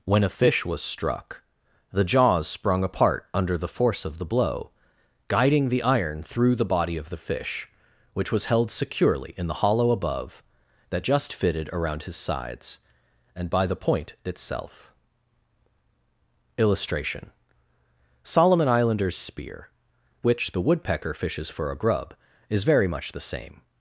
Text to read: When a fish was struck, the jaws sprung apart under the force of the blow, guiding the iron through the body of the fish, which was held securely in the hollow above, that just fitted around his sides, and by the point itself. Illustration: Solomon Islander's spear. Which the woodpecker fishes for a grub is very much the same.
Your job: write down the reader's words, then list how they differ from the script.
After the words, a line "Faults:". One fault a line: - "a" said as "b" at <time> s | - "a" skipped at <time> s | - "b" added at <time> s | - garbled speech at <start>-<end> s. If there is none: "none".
When a fish was struck, the jaws sprung apart under the force of the blow, guiding the iron through the body of the fish, which was held securely in the hollow above, that just fitted around his sides, and by the point itself. Illustration: Solomon Islander's spear. Which the woodpecker fishes for a grub is very much the same.
Faults:
none